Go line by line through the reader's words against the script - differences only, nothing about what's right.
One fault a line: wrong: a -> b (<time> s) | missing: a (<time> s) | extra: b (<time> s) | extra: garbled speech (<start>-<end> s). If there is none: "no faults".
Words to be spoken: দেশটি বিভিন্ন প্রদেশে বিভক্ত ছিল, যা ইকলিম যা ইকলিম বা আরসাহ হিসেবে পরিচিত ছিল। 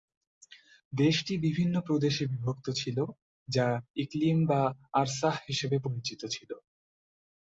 missing: যা ইকলিম (4.4 s)